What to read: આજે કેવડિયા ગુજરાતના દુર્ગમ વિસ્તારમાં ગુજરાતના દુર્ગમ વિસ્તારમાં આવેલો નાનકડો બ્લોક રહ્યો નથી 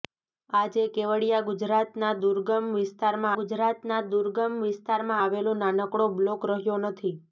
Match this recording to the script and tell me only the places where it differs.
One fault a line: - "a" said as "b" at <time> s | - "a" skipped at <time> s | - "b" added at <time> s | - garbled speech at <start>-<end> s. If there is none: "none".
none